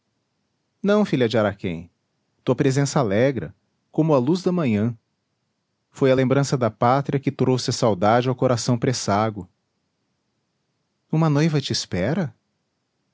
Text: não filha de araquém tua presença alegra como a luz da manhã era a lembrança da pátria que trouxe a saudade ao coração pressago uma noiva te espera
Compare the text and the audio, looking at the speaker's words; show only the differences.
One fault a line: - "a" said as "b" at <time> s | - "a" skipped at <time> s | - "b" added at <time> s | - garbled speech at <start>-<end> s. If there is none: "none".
- "era" said as "foi" at 5.9 s